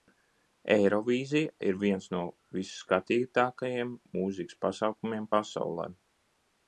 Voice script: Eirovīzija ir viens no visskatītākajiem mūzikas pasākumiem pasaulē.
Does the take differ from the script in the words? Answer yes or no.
no